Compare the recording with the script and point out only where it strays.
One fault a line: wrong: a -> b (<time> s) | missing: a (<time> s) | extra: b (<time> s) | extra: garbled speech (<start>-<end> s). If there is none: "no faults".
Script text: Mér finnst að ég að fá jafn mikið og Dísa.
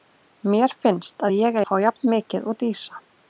no faults